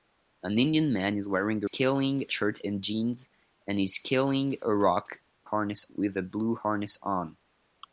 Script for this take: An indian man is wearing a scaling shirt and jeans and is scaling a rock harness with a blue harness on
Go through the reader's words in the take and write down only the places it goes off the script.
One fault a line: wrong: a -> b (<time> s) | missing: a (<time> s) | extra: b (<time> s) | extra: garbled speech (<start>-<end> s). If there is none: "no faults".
no faults